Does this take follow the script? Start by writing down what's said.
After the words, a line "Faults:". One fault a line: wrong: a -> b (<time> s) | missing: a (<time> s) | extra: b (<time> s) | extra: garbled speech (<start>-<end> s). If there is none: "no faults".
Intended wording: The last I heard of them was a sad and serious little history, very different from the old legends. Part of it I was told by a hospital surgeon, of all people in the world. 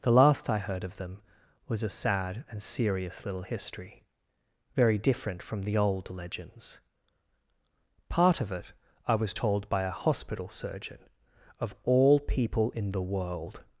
The last I heard of them was a sad and serious little history, very different from the old legends. Part of it I was told by a hospital surgeon, of all people in the world.
Faults:
no faults